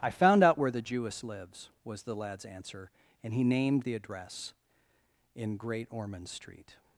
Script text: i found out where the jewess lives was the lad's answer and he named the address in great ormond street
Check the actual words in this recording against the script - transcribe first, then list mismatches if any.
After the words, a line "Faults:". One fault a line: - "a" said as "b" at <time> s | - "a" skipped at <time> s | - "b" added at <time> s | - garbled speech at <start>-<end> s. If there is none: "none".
i found out where the jewess lives was the lad's answer and he named the address in great ormond street
Faults:
none